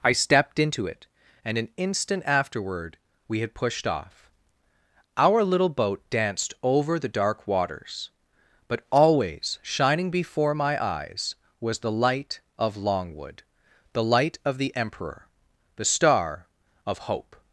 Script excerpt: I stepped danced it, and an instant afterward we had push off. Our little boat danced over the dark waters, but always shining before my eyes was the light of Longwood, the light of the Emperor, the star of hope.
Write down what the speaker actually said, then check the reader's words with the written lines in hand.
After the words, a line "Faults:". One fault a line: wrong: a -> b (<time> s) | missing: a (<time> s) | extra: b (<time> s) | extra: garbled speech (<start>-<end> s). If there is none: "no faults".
I stepped into it, and an instant afterward we had pushed off. Our little boat danced over the dark waters, but always shining before my eyes was the light of Longwood, the light of the Emperor, the star of hope.
Faults:
wrong: danced -> into (0.6 s)
wrong: push -> pushed (3.5 s)